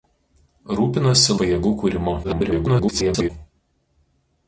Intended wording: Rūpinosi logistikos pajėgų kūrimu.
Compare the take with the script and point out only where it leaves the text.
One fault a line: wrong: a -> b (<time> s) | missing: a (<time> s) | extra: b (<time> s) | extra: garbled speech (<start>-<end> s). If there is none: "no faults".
missing: logistikos (1.4 s)
extra: garbled speech (2.2-3.3 s)